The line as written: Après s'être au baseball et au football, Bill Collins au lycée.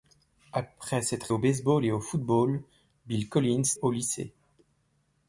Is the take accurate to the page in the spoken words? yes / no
yes